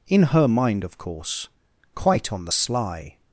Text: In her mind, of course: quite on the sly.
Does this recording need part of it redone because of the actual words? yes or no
no